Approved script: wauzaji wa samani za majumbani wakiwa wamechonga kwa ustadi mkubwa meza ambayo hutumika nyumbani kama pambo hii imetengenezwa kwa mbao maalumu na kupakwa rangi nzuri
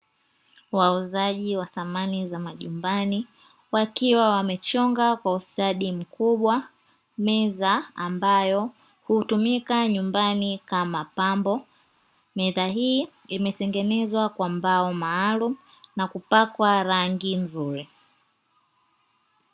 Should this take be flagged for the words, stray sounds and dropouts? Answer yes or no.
yes